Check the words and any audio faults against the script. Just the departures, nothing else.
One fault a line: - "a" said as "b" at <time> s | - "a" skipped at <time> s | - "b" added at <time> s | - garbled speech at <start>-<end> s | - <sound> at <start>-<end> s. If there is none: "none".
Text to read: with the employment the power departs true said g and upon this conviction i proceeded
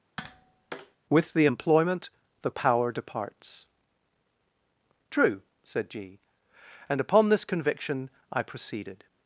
- tap at 0.2-1.0 s